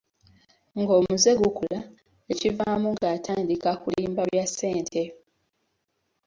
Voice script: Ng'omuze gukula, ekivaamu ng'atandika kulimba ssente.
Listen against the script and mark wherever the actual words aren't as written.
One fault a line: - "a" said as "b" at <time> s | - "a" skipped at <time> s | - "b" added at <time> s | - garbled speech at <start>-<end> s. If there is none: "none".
- "bya" added at 4.3 s